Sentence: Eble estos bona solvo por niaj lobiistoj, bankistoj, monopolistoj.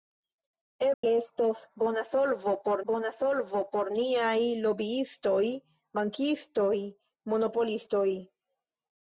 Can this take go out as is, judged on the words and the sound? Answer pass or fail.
fail